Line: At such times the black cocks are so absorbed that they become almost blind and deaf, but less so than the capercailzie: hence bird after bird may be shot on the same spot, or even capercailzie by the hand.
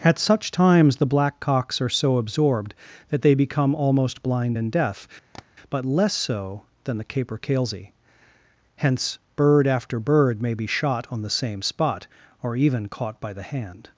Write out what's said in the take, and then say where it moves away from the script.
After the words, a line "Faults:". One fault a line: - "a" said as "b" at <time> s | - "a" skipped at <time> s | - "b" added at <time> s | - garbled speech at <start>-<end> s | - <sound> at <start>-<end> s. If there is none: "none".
At such times the black cocks are so absorbed that they become almost blind and deaf, but less so than the capercailzie: hence bird after bird may be shot on the same spot, or even caught by the hand.
Faults:
- tap at 5.3-5.5 s
- "capercailzie" said as "caught" at 12.9 s